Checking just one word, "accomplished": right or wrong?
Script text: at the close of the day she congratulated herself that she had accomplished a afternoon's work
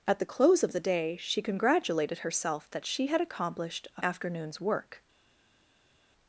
right